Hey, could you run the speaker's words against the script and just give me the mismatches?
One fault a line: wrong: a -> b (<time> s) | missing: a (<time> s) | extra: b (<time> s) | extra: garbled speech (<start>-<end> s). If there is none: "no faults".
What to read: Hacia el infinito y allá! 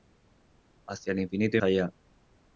no faults